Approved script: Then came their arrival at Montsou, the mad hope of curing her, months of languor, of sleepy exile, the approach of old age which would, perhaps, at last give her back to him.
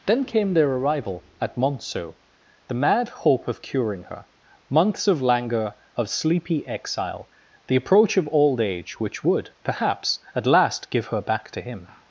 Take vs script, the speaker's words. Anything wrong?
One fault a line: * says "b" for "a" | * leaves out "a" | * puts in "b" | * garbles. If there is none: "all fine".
all fine